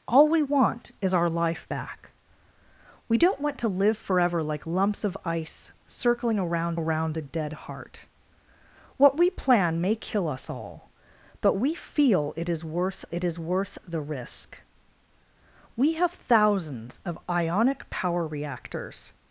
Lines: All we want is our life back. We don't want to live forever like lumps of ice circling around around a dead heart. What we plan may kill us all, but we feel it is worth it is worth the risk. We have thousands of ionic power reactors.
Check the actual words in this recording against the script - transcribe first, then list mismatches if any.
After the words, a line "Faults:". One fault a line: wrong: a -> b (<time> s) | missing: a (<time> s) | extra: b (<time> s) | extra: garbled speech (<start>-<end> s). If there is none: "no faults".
All we want is our life back. We don't want to live forever like lumps of ice circling around around a dead heart. What we plan may kill us all, but we feel it is worth it is worth the risk. We have thousands of ionic power reactors.
Faults:
no faults